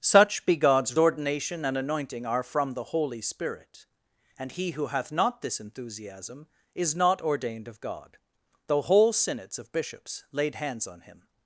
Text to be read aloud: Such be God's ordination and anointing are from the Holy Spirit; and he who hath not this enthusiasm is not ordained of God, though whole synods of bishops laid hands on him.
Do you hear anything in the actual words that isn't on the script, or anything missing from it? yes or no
no